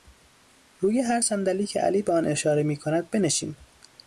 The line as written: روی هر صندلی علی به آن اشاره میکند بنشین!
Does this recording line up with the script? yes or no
no